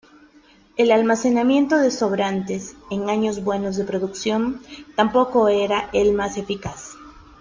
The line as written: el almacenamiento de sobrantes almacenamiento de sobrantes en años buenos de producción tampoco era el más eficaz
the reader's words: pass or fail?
fail